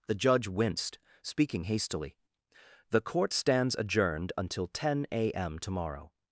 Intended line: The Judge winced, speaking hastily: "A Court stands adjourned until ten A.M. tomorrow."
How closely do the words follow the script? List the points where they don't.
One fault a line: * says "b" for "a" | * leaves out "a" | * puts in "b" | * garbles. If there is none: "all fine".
* says "The" for "A"